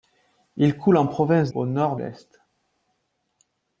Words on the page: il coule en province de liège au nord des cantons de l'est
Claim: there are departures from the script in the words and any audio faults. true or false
true